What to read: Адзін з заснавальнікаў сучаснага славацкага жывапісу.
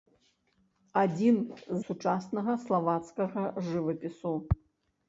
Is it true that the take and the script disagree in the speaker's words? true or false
true